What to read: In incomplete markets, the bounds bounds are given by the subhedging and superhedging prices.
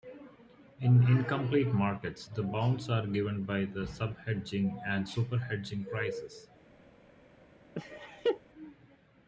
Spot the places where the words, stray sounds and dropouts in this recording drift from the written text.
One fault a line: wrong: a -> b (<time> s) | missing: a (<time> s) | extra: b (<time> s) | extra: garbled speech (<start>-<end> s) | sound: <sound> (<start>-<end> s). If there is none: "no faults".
missing: bounds (2.9 s)
sound: laugh (7.7-8.4 s)